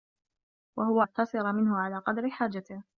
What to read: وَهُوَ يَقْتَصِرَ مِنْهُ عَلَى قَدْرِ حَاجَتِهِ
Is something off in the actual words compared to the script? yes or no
no